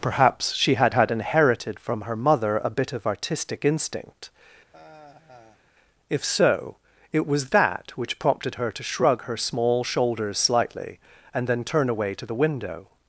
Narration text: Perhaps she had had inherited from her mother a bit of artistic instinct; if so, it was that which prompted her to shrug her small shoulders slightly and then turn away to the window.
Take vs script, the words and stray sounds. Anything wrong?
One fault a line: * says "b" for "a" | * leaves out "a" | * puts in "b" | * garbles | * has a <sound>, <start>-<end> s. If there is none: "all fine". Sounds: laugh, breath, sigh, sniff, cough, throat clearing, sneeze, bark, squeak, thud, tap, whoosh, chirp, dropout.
* has a sigh, 4.7-5.6 s